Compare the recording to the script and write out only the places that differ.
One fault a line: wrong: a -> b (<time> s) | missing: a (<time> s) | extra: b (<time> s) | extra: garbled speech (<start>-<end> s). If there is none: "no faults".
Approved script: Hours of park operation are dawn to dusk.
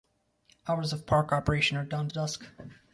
no faults